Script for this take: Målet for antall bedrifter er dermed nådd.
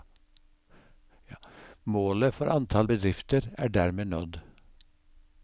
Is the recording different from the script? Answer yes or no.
no